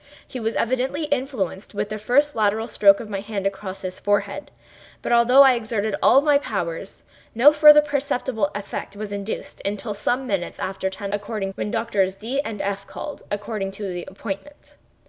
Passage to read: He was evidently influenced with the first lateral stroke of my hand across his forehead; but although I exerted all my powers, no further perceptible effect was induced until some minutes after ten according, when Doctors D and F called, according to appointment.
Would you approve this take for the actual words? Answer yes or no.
yes